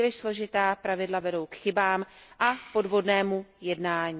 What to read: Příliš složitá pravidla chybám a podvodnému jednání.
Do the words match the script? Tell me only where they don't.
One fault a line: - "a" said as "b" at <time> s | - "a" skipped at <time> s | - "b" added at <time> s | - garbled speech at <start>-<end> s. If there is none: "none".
- "vedou k" added at 1.2 s